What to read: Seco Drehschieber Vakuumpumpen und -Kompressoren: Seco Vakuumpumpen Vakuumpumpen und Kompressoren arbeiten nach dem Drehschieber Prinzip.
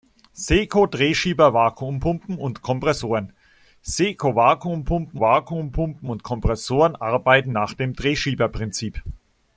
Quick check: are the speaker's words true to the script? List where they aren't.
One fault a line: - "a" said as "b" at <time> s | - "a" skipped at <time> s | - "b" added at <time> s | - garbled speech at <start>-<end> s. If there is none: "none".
none